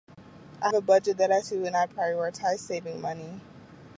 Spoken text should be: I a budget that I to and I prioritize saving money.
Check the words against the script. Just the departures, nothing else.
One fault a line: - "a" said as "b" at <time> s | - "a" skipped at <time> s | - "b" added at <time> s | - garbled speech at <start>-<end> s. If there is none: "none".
none